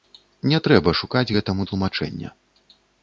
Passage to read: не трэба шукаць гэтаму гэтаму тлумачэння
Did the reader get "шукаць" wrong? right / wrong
right